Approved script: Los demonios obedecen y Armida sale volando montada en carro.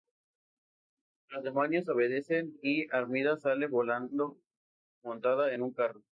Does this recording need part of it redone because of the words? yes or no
yes